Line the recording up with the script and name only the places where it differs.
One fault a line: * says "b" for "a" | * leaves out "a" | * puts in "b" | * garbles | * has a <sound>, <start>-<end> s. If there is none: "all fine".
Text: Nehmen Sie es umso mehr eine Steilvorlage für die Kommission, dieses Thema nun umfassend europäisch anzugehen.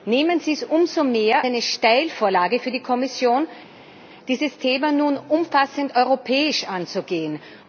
all fine